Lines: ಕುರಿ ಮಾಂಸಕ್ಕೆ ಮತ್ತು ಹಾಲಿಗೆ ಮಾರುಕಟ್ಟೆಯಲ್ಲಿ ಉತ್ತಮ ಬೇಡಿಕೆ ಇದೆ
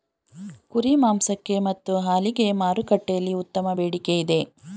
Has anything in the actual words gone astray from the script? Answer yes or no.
no